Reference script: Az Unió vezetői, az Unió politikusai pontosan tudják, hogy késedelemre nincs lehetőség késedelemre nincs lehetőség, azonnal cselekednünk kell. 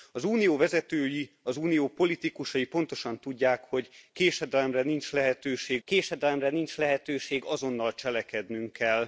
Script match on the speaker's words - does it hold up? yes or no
yes